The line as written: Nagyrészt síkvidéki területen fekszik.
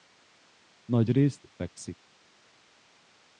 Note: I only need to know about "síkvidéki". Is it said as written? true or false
false